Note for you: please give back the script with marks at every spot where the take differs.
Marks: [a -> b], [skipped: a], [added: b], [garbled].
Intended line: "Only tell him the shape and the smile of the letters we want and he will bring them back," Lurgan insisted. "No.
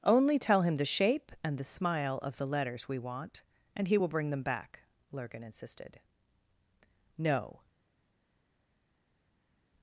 "Only tell him the shape and the smile of the letters we want and he will bring them back," Lurgan insisted. "No.